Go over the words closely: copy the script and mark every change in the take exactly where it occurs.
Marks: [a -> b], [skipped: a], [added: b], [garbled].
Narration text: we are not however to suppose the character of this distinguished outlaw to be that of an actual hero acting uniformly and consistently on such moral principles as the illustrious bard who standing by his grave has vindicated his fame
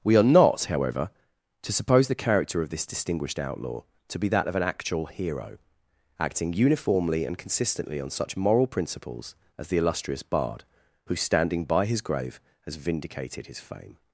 we are not however to suppose the character of this distinguished outlaw to be that of an actual hero acting uniformly and consistently on such moral principles as the illustrious bard who standing by his grave has vindicated his fame